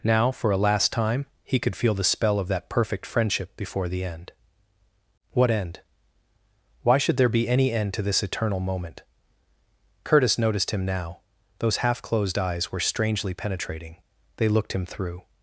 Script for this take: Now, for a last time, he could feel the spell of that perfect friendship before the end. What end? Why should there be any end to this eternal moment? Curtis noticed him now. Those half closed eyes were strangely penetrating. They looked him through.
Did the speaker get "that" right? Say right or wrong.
right